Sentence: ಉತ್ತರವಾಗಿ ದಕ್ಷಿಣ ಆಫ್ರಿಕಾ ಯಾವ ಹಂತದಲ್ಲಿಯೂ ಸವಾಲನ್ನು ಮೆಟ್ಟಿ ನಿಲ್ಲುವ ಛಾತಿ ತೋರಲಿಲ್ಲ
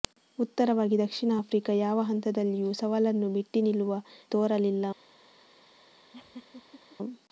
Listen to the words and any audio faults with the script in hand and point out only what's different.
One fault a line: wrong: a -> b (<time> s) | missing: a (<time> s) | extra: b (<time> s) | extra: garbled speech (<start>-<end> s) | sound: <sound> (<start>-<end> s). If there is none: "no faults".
missing: ಛಾತಿ (4.0 s)
sound: laugh (6.1-7.0 s)